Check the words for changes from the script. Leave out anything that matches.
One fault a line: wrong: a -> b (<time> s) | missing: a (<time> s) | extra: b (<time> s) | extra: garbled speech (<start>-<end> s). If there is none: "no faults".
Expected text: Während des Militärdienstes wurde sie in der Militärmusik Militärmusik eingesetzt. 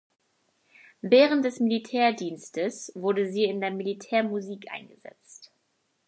missing: Militärmusik (4.7 s)